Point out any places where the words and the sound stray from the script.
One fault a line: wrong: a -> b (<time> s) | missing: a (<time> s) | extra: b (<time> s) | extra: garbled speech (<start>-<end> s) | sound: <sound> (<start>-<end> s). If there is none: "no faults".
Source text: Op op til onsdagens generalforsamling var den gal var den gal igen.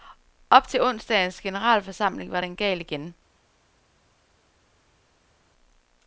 missing: op (0.7 s)
missing: var den gal (2.8 s)